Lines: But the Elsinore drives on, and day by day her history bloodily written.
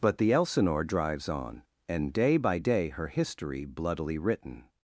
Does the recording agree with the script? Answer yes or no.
yes